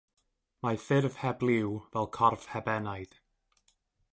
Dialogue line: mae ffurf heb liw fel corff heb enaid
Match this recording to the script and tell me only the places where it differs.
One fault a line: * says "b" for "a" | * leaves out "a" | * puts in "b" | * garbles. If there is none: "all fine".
all fine